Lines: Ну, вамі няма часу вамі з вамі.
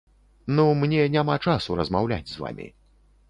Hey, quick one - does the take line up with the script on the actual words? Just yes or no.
no